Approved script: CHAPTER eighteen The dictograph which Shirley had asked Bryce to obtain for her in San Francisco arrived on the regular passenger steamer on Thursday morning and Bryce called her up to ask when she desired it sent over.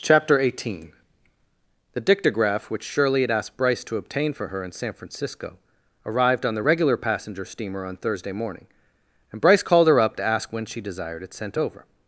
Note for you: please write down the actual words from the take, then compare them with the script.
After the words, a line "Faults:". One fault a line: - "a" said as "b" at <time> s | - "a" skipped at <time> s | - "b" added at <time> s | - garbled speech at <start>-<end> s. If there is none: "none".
CHAPTER eighteen The dictograph which Shirley had asked Bryce to obtain for her in San Francisco arrived on the regular passenger steamer on Thursday morning and Bryce called her up to ask when she desired it sent over.
Faults:
none